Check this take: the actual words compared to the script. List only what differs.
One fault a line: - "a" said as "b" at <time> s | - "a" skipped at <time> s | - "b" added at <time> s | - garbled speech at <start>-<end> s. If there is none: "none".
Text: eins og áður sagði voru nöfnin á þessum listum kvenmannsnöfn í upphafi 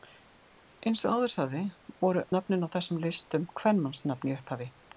none